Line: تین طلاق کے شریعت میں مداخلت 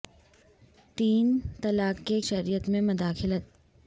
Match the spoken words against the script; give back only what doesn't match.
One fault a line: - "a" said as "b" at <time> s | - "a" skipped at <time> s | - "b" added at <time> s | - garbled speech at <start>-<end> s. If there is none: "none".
none